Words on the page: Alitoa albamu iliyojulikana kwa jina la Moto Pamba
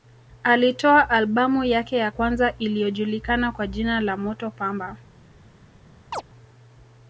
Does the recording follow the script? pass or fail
fail